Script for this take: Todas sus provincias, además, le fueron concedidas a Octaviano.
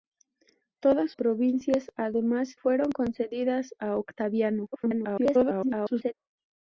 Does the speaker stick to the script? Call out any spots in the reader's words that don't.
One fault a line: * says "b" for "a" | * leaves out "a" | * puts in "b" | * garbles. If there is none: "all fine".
* leaves out "sus"
* leaves out "le"
* garbles